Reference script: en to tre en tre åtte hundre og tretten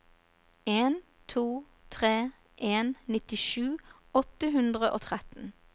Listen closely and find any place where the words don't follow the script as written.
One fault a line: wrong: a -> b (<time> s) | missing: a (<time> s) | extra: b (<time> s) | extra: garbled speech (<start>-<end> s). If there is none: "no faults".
wrong: tre -> nittisju (3.0 s)